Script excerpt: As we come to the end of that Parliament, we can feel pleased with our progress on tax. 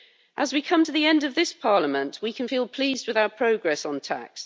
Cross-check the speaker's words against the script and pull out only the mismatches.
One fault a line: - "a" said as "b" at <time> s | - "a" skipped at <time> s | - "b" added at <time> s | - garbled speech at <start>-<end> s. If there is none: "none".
- "that" said as "this" at 1.3 s